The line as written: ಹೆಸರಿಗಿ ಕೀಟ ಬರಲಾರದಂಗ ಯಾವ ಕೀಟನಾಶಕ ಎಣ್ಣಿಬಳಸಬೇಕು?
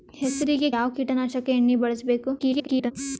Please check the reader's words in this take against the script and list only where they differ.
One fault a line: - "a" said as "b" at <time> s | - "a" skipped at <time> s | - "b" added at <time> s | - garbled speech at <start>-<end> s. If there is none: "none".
- "ಕೀಟ ಬರಲಾರದಂಗ" skipped at 0.7 s
- garbled speech at 2.4-2.9 s